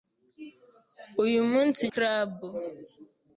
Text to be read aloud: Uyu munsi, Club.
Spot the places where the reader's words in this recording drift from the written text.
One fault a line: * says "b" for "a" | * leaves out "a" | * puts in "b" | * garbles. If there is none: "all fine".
all fine